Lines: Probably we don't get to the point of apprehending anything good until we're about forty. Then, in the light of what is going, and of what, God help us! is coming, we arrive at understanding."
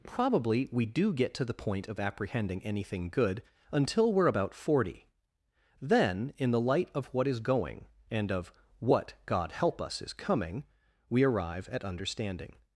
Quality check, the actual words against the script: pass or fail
fail